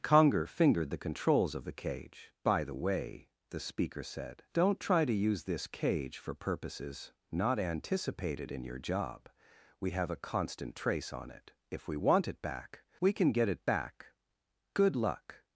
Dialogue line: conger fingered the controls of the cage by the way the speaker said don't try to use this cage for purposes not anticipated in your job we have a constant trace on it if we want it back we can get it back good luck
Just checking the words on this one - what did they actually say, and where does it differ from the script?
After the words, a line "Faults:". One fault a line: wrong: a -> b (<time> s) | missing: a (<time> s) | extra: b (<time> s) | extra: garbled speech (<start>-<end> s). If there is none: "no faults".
conger fingered the controls of the cage by the way the speaker said don't try to use this cage for purposes not anticipated in your job we have a constant trace on it if we want it back we can get it back good luck
Faults:
no faults